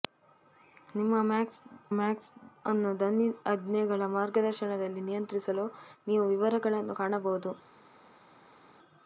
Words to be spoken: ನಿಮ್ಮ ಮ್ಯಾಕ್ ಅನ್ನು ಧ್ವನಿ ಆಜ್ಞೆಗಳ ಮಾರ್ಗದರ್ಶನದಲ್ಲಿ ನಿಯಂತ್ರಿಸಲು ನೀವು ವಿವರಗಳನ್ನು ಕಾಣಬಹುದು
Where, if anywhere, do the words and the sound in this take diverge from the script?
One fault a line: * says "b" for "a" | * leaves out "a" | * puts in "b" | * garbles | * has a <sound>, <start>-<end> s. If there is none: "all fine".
* puts in "ಮ್ಯಾಕ್"